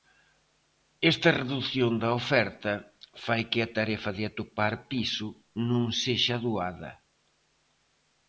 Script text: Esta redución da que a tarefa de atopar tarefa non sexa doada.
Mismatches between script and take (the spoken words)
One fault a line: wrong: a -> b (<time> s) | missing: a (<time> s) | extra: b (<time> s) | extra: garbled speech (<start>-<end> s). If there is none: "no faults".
extra: oferta fai (2.2 s)
wrong: tarefa -> piso (4.9 s)